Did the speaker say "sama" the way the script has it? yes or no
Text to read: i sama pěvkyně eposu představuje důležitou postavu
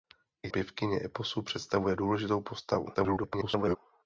no